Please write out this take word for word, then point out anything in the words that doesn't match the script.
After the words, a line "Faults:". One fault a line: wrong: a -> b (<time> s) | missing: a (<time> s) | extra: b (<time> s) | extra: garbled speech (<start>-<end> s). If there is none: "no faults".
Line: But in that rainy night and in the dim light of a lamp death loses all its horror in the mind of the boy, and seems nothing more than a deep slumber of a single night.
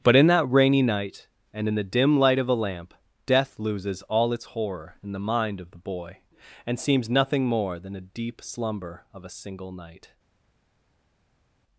But in that rainy night and in the dim light of a lamp death loses all its horror in the mind of the boy, and seems nothing more than a deep slumber of a single night.
Faults:
no faults